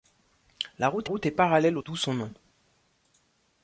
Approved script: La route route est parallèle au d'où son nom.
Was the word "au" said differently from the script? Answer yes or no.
no